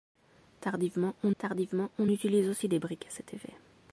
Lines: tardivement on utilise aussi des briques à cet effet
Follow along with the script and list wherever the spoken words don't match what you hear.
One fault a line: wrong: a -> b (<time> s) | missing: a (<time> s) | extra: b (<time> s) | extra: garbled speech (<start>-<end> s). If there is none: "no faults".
extra: tardivement on (1.4 s)